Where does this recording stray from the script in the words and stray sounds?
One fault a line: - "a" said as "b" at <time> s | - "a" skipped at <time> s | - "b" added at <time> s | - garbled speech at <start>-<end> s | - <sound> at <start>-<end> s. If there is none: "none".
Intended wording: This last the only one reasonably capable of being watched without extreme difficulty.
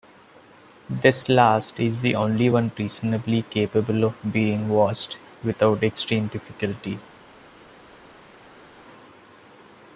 - "is" added at 1.8 s